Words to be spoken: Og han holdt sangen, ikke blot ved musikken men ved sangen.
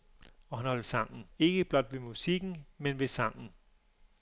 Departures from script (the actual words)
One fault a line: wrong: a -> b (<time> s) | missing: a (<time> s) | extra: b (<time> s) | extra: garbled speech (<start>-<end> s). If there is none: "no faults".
no faults